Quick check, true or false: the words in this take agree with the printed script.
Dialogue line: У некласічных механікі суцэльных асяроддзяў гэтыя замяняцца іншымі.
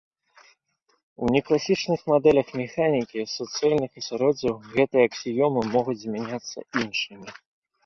false